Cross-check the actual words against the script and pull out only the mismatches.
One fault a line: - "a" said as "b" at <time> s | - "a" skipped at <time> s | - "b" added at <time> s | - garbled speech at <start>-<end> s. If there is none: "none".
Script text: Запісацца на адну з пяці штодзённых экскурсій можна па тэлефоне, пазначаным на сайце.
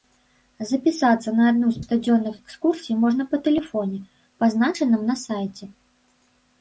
- "пяці" skipped at 1.8 s